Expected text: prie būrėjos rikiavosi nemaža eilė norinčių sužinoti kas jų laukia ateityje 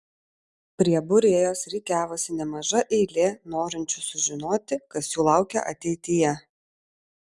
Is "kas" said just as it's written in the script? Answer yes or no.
yes